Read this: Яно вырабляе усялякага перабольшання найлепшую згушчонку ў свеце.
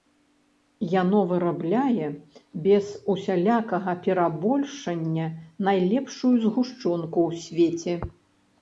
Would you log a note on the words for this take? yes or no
yes